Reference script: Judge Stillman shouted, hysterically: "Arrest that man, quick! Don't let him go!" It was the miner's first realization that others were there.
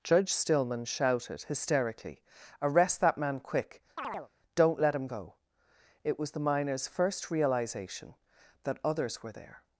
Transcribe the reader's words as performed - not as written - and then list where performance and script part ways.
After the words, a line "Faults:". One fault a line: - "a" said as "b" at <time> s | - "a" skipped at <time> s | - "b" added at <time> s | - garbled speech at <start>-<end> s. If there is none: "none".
Judge Stillman shouted, hysterically: "Arrest that man, quick! Don't let him go!" It was the miner's first realization that others were there.
Faults:
none